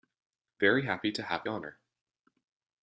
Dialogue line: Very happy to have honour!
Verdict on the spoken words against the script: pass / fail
pass